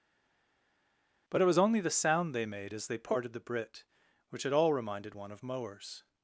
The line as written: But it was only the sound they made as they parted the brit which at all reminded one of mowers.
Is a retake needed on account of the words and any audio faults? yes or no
no